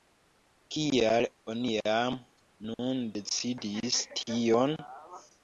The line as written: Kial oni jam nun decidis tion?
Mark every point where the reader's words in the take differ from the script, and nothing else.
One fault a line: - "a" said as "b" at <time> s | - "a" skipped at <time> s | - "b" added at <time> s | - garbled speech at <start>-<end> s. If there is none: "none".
none